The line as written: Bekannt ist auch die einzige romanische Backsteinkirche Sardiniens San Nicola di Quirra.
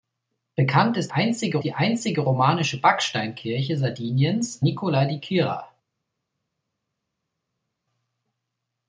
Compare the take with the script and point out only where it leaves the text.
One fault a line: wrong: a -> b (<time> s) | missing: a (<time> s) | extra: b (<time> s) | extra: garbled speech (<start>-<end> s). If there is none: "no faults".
wrong: auch -> einzige (1.1 s)
missing: San (4.6 s)